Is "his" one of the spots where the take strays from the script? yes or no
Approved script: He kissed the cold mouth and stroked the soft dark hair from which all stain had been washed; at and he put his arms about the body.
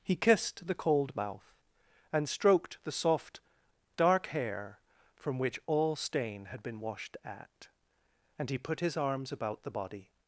no